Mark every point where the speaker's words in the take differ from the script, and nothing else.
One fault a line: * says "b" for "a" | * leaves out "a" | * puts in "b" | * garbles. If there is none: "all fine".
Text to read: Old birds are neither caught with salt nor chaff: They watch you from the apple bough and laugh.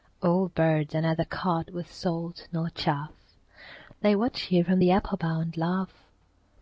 all fine